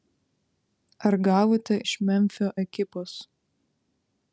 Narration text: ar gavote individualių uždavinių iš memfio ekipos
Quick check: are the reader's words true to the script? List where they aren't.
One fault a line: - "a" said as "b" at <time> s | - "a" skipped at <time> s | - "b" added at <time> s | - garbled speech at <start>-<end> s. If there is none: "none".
- "individualių uždavinių" skipped at 1.8 s